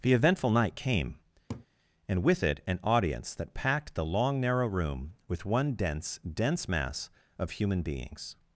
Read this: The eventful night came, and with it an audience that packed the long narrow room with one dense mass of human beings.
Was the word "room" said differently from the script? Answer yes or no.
no